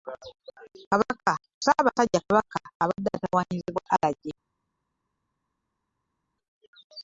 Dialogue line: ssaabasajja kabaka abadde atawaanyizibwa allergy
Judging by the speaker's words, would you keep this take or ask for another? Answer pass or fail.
pass